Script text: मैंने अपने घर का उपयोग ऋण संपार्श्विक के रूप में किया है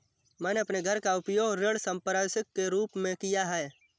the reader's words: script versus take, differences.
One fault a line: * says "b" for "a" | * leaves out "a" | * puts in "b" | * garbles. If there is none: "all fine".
all fine